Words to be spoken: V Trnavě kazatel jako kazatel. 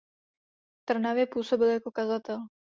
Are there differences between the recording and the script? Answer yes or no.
yes